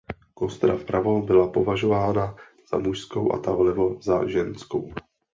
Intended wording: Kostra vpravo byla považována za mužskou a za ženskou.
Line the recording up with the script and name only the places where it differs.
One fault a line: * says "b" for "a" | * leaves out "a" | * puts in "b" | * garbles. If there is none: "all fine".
* puts in "ta vlevo"